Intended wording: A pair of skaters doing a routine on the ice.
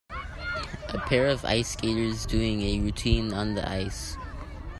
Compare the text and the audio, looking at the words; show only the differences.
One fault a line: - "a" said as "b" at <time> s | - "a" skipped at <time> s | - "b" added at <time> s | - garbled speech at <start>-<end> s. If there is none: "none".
- "ice" added at 1.4 s